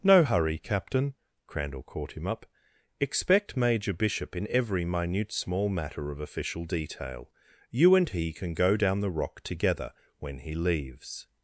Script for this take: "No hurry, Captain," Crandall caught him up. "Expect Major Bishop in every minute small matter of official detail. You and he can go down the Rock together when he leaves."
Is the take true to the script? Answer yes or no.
yes